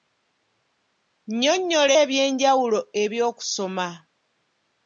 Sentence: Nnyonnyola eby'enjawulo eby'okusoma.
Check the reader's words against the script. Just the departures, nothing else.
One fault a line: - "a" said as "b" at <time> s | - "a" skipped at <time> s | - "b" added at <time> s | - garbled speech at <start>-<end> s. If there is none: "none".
none